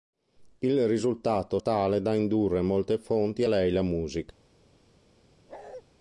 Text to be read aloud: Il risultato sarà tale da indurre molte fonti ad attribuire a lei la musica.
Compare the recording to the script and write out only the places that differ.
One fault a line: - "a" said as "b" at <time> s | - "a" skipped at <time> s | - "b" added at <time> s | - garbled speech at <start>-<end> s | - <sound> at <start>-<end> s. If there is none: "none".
- "sarà" skipped at 1.6 s
- "ad attribuire" skipped at 3.4 s
- bark at 5.5-5.8 s